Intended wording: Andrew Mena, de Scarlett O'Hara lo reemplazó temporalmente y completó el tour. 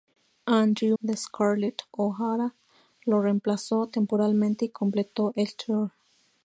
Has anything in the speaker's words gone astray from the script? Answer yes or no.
yes